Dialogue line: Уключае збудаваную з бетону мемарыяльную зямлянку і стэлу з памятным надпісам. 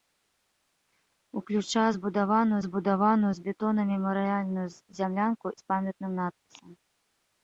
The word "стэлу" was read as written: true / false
false